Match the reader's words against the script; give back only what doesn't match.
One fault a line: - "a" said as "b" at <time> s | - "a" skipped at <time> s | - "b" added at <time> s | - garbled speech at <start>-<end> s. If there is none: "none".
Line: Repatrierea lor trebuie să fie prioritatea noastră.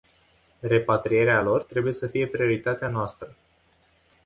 none